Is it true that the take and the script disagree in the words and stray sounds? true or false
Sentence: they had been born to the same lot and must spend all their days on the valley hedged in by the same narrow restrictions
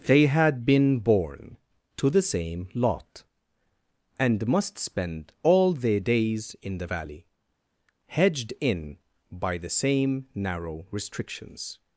true